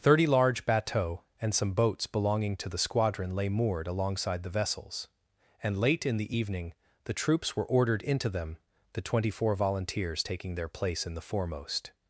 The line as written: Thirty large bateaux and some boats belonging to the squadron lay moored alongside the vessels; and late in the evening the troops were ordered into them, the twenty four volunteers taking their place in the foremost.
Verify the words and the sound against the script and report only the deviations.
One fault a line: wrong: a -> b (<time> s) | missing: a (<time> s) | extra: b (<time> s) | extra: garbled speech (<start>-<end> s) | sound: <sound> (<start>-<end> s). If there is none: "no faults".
no faults